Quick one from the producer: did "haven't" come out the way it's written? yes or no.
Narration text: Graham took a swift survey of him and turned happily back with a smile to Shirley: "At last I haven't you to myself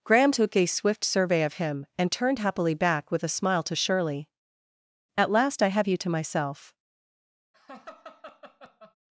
no